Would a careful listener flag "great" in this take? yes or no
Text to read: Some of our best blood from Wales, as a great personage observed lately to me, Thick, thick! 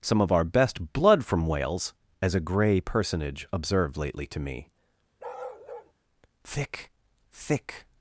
yes